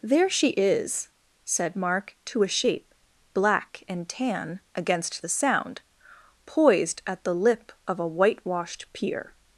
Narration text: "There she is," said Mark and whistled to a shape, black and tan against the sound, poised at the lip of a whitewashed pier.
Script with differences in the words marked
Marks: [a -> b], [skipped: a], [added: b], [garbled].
"There she is," said Mark [skipped: and whistled] to a shape, black and tan against the sound, poised at the lip of a whitewashed pier.